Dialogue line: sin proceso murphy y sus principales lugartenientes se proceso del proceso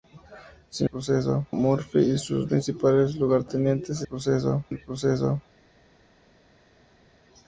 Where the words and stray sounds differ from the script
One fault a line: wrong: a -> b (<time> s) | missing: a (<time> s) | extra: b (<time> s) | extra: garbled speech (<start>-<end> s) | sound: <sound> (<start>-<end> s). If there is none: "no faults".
no faults